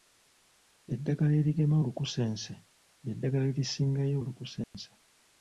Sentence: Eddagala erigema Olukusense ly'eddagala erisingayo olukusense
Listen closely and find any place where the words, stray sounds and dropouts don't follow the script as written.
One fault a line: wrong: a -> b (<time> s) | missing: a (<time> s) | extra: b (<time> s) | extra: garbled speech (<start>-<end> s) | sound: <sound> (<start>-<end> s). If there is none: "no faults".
sound: dropout (4.6-4.7 s)